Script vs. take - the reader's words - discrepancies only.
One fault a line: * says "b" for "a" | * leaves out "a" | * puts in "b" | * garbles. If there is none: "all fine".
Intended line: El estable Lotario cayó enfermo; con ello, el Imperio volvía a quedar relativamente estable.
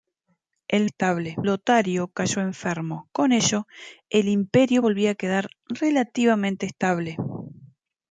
all fine